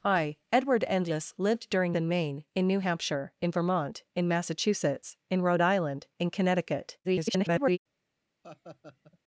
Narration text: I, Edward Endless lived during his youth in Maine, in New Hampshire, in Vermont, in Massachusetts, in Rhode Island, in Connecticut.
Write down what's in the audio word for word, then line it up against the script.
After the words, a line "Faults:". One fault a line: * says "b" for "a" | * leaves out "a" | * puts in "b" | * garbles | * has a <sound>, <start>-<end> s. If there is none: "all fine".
I, Edward Endless lived during in Maine, in New Hampshire, in Vermont, in Massachusetts, in Rhode Island, in Connecticut. [garbled]
Faults:
* leaves out "his youth"
* garbles
* has a laugh, 8.4-9.2 s